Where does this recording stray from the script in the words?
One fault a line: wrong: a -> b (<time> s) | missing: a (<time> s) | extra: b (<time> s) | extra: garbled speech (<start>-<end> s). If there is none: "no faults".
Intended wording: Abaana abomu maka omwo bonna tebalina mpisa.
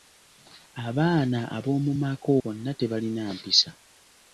missing: omwo (2.3 s)